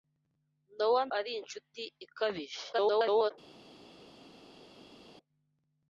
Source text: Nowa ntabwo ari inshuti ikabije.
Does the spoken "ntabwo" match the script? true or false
false